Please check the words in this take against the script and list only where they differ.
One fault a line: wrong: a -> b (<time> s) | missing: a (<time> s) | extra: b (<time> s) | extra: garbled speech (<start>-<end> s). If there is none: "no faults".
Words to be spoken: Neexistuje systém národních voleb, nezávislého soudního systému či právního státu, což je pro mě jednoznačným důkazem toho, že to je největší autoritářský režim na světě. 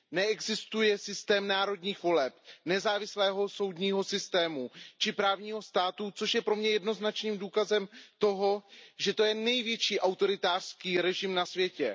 no faults